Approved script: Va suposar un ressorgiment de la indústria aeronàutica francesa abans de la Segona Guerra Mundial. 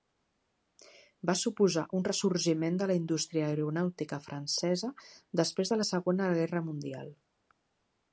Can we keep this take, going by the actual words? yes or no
no